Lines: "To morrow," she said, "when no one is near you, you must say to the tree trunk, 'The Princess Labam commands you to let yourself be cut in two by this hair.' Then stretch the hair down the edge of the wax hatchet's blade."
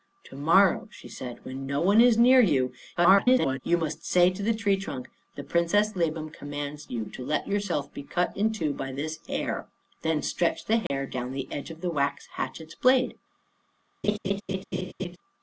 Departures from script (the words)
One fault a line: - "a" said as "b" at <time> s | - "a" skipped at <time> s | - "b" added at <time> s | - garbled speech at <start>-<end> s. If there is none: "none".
- garbled speech at 3.0-3.6 s